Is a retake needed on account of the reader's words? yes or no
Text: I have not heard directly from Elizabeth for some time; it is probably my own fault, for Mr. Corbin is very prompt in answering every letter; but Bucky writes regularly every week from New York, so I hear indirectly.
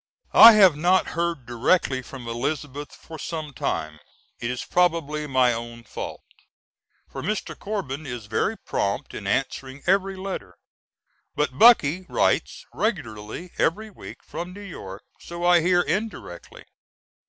no